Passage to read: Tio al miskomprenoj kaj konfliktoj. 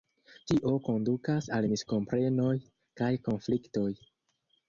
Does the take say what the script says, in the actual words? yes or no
no